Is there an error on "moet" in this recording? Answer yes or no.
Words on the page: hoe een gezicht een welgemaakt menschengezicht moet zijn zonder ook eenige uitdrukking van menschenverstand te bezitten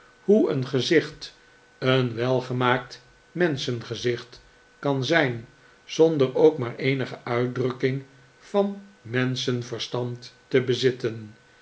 yes